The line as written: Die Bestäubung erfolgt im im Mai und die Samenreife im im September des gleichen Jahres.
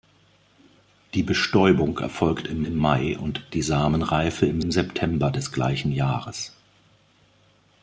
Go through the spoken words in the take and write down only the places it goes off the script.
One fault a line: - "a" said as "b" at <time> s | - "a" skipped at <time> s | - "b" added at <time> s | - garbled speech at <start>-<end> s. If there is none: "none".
none